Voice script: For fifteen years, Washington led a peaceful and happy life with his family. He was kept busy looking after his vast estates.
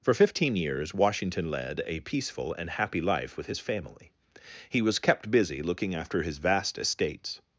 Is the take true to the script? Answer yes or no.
yes